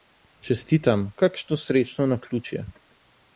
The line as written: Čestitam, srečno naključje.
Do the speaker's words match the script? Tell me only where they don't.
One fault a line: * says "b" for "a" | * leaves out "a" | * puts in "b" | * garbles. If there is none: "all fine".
* puts in "kakšno"